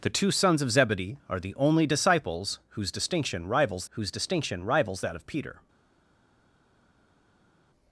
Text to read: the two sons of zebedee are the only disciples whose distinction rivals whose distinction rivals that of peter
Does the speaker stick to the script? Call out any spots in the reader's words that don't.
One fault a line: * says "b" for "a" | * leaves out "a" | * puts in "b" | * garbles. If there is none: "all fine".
all fine